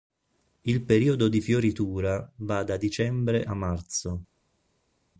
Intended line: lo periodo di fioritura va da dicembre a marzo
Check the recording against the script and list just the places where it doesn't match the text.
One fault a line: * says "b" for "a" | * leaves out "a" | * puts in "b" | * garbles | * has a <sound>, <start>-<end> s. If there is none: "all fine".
* says "il" for "lo"